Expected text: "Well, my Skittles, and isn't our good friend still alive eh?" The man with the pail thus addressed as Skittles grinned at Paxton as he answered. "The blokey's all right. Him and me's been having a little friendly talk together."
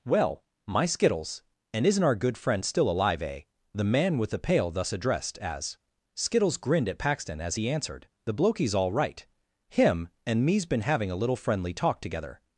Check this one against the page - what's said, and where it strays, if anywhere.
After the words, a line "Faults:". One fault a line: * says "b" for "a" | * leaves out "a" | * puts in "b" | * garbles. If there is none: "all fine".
"Well, my Skittles, and isn't our good friend still alive eh?" The man with the pail thus addressed as Skittles grinned at Paxton as he answered. "The blokey's all right. Him and me's been having a little friendly talk together."
Faults:
all fine